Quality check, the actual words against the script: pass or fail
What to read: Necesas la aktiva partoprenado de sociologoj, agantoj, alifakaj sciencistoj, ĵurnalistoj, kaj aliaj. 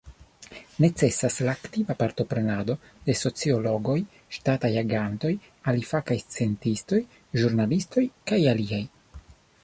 fail